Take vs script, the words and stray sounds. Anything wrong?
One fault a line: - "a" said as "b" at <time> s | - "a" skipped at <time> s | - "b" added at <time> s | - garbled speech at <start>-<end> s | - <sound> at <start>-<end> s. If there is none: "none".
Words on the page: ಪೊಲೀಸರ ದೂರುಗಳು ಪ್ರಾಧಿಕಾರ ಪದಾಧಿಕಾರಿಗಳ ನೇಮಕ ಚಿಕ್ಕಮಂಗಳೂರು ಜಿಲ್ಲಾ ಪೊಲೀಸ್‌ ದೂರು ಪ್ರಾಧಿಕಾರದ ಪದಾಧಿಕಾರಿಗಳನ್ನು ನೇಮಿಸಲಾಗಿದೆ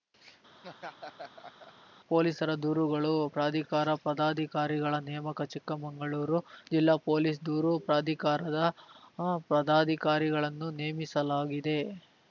- laugh at 0.6-1.7 s